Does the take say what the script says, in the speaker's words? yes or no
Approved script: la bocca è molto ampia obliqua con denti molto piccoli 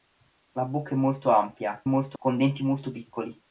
no